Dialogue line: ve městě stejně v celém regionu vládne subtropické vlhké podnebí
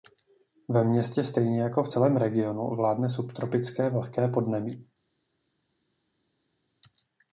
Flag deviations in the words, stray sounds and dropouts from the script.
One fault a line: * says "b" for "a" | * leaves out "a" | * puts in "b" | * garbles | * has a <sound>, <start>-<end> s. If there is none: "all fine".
* puts in "jako"